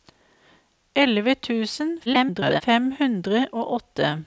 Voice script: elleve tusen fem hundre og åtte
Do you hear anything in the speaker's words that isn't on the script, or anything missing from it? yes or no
yes